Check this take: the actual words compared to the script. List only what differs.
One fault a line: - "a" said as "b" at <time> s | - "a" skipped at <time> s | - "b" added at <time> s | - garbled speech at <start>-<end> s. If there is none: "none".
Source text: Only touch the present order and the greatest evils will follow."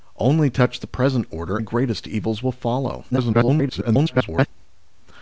- "and" skipped at 1.6 s
- garbled speech at 3.1-4.5 s